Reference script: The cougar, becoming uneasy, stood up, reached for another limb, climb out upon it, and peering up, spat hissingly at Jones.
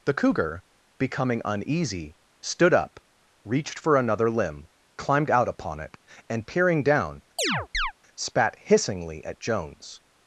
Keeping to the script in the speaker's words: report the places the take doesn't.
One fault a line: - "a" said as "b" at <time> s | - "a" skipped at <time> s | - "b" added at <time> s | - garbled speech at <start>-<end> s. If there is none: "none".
- "climb" said as "climbed" at 5.0 s
- "up" said as "down" at 6.8 s